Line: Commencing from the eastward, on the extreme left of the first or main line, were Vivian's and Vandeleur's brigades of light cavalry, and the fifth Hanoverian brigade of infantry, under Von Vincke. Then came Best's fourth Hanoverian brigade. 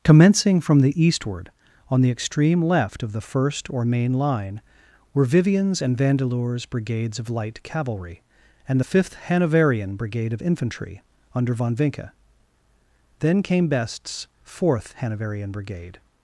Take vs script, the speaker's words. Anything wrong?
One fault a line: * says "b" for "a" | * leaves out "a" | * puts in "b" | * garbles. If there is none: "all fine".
all fine